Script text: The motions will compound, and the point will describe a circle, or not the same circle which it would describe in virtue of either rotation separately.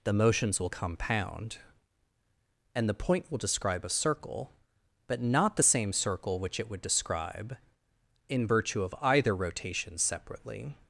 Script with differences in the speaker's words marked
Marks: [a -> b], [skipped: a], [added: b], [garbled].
The motions will compound, and the point will describe a circle, [or -> but] not the same circle which it would describe in virtue of either rotation separately.